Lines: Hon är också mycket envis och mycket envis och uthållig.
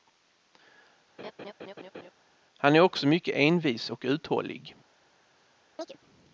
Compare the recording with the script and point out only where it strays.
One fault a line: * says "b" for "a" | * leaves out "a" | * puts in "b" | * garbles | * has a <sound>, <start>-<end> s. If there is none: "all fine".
* has a laugh, 1.2-2.1 s
* says "Han" for "Hon"
* leaves out "mycket envis och"
* has a chirp, 5.8-6.0 s